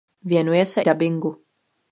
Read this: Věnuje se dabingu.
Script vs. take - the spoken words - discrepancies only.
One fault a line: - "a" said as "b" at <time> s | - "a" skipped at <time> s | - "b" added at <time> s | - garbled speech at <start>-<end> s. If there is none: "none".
none